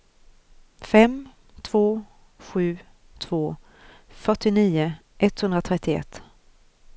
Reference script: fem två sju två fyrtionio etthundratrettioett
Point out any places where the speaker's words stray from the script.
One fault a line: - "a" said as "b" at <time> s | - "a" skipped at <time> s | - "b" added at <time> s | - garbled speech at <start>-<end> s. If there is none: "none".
none